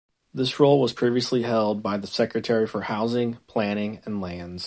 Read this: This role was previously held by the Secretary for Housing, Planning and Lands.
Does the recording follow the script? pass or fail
pass